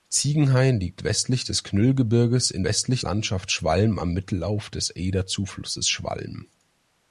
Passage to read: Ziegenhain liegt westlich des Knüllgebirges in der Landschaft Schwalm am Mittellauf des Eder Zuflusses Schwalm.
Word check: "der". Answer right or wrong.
wrong